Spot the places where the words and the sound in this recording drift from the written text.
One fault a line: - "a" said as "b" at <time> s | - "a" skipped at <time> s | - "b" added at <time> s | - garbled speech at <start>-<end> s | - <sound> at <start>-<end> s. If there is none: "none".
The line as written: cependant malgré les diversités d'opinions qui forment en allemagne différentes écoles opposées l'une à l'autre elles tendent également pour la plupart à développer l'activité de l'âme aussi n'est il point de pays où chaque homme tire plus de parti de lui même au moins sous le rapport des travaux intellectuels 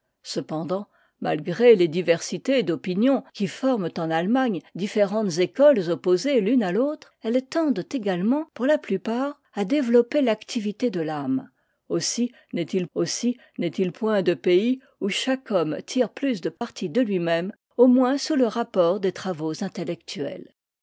- "aussi n'est il" added at 12.9 s
- dropout at 16.6-16.6 s